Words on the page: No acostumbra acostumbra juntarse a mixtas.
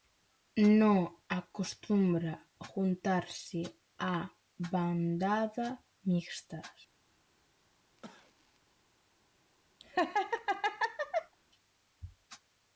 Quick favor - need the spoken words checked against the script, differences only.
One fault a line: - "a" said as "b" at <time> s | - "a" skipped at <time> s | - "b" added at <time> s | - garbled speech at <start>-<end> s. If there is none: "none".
- "acostumbra" skipped at 2.3 s
- "bandada" added at 4.7 s